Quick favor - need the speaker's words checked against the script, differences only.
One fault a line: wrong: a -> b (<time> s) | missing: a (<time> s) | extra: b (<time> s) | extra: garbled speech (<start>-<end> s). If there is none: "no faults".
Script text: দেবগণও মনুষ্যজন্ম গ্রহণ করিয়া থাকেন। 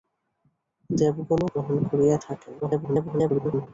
missing: মনুষ্যজন্ম (1.5 s)
extra: garbled speech (2.6-3.7 s)